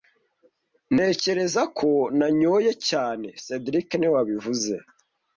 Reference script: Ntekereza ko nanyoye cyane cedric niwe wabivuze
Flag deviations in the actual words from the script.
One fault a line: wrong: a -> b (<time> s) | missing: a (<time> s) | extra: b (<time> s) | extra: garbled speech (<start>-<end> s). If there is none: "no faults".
no faults